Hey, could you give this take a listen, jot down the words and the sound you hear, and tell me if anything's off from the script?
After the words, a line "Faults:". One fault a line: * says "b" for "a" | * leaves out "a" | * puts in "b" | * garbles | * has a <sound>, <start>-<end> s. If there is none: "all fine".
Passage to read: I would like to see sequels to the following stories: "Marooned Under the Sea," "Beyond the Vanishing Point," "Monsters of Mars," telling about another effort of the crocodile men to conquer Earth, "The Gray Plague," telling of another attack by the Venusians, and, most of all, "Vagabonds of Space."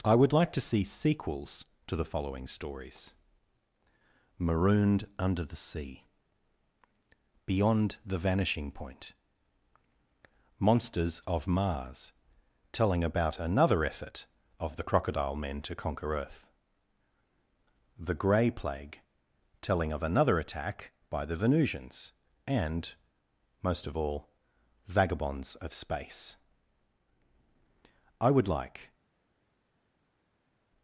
I would like to see sequels to the following stories: "Marooned Under the Sea," "Beyond the Vanishing Point," "Monsters of Mars," telling about another effort of the crocodile men to conquer Earth, "The Gray Plague," telling of another attack by the Venusians, and, most of all, "Vagabonds of Space." I would like
Faults:
* puts in "I would like"